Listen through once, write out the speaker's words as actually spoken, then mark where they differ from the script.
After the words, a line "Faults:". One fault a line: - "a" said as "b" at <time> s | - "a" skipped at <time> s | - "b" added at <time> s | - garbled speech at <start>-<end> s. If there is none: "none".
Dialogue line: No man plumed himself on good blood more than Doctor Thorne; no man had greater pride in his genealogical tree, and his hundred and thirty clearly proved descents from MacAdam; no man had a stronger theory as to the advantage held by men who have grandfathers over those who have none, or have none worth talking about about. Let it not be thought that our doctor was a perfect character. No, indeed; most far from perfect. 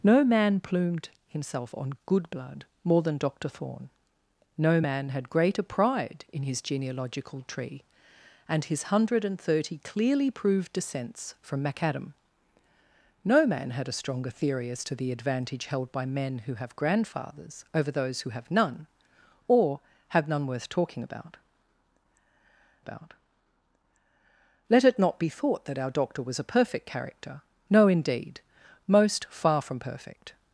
No man plumed himself on good blood more than Doctor Thorne; no man had greater pride in his genealogical tree, and his hundred and thirty clearly proved descents from MacAdam; no man had a stronger theory as to the advantage held by men who have grandfathers over those who have none, or have none worth talking about about. Let it not be thought that our doctor was a perfect character. No, indeed; most far from perfect.
Faults:
none